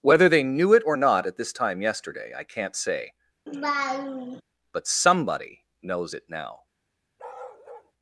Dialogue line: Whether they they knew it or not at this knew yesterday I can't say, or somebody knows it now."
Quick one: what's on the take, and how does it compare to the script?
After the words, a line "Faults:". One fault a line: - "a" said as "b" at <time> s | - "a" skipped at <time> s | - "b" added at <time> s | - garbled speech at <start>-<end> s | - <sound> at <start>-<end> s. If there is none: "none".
Whether they knew it or not at this time yesterday I can't say, but somebody knows it now."
Faults:
- "they" skipped at 0.4 s
- "knew" said as "time" at 1.5 s
- laugh at 3.5-4.4 s
- "or" said as "but" at 4.7 s
- bark at 7.2-7.9 s